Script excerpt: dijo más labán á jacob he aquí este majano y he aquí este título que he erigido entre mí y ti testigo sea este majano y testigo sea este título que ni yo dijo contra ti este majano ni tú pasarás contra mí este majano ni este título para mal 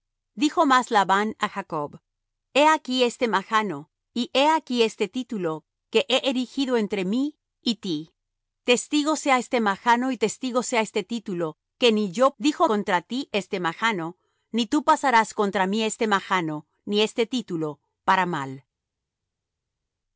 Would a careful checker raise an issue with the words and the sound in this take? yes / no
no